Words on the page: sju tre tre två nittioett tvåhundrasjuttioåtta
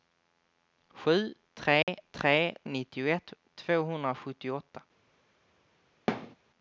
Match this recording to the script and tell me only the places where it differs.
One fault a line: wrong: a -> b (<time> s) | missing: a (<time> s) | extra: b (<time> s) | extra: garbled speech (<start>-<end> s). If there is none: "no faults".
missing: två (2.5 s)